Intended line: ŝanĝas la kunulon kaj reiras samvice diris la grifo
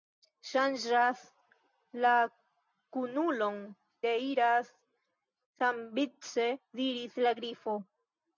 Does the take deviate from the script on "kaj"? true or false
true